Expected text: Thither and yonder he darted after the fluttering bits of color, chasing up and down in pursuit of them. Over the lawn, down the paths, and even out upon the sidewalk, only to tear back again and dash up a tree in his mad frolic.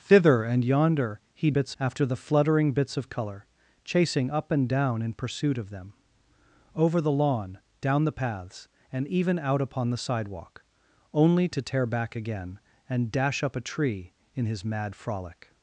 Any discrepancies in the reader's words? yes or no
yes